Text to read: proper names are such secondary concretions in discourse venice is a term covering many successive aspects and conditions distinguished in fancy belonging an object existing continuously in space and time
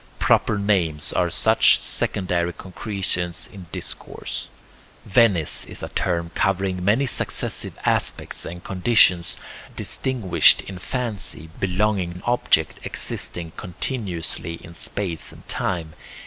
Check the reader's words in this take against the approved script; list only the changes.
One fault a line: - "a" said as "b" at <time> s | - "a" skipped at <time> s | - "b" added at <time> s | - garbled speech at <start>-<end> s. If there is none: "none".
none